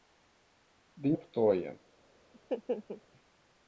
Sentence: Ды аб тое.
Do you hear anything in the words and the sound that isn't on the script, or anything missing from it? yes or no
yes